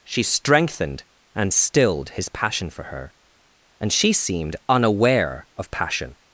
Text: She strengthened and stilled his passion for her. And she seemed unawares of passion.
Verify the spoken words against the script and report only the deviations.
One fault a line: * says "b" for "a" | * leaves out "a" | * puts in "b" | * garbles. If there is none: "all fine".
* says "unaware" for "unawares"